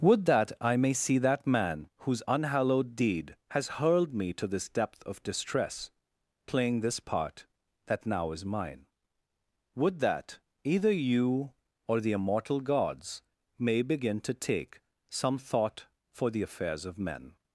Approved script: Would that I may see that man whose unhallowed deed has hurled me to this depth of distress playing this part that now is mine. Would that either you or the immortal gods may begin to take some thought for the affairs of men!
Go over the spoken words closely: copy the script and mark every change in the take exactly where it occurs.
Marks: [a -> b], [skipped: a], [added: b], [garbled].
Would that I may see that man whose unhallowed deed has hurled me to this depth of distress playing this part that now is mine. Would that either you or the immortal gods may begin to take some thought for the affairs of men!